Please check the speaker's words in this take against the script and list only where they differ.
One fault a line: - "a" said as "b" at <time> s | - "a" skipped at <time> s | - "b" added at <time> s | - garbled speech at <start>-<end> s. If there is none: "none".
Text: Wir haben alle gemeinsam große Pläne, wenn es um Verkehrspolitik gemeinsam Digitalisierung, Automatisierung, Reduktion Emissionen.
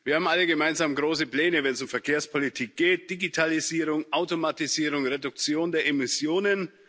- "gemeinsam" said as "geht" at 2.8 s
- "der" added at 5.7 s